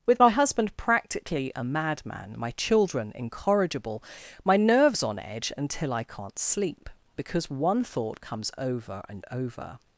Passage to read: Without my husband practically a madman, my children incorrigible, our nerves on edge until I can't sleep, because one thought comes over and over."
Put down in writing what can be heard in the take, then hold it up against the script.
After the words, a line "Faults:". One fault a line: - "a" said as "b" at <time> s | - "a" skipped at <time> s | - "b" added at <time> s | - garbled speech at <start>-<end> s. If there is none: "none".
With my husband practically a madman, my children incorrigible, my nerves on edge until I can't sleep, because one thought comes over and over."
Faults:
- "Without" said as "With" at 0.1 s
- "our" said as "my" at 4.4 s